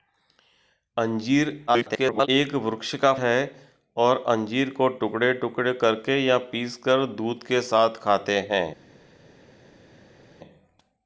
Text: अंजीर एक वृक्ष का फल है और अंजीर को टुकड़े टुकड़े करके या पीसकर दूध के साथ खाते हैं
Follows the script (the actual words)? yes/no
no